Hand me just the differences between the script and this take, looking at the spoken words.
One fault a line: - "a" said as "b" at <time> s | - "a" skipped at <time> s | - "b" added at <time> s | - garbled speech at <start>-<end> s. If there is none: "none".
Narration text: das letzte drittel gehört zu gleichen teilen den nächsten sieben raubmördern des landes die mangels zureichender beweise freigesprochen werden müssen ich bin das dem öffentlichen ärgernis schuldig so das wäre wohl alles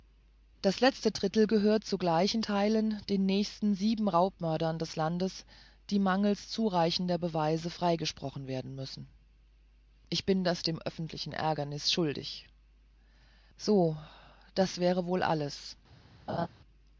none